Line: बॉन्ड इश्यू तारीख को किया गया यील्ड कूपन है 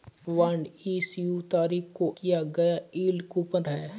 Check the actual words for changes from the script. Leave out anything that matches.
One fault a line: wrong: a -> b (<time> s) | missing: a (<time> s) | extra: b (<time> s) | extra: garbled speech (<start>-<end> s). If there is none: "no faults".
no faults